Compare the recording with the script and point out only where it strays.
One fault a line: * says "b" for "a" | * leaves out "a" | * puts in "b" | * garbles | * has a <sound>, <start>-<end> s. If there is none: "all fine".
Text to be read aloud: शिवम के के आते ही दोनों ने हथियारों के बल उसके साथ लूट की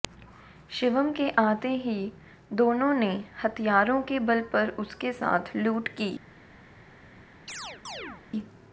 * leaves out "के"
* puts in "पर"
* has a chirp, 7.5-8.2 s